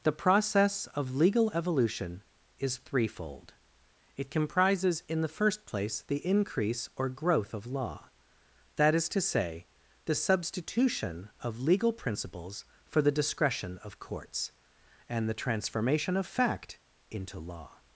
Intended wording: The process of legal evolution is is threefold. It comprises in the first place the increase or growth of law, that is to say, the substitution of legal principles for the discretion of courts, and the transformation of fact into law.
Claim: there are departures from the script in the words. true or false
true